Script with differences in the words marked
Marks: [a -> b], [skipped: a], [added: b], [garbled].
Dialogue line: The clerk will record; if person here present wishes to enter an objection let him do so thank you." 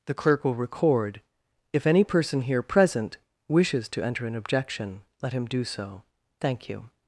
The clerk will record; if [added: any] person here present wishes to enter an objection let him do so thank you."